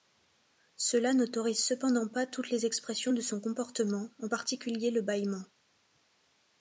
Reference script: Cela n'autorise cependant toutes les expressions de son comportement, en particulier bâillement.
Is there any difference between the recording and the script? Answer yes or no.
yes